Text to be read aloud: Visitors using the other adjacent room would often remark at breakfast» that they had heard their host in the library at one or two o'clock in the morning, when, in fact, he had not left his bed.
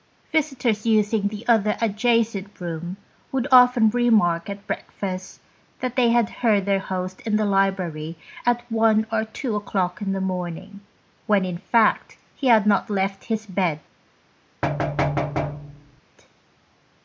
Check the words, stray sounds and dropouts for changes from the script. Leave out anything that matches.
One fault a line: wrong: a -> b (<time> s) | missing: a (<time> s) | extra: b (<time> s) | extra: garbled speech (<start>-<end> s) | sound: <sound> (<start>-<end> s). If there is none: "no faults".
sound: thud (14.6-16.0 s)